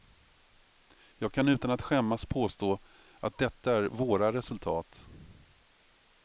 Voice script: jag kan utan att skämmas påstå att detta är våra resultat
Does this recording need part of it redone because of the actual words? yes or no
no